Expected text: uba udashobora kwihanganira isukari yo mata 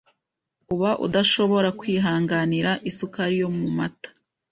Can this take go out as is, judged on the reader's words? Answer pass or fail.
fail